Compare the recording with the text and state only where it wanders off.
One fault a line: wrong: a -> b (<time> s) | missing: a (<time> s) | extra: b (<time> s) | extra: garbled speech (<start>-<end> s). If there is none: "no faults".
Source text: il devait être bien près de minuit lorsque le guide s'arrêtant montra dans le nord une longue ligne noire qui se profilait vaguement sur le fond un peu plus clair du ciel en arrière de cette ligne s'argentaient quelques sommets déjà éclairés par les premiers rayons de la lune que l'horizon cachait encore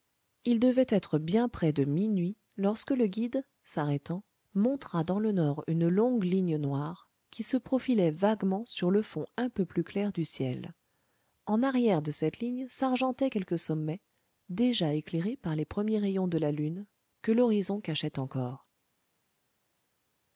no faults